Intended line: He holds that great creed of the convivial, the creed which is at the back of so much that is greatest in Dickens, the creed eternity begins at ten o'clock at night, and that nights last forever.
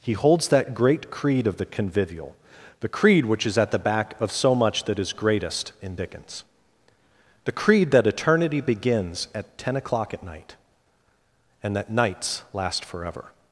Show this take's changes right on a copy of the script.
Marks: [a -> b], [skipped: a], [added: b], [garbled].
He holds that great creed of the convivial, the creed which is at the back of so much that is greatest in Dickens, the creed [added: that] eternity begins at ten o'clock at night, and that nights last forever.